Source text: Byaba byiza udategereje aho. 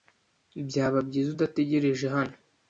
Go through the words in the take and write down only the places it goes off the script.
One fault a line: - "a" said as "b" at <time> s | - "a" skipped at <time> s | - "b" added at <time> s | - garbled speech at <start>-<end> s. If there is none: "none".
- "aho" said as "hano" at 2.1 s